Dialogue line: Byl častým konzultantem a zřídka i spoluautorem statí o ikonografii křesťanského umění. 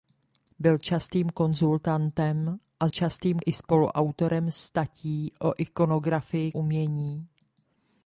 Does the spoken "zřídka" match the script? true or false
false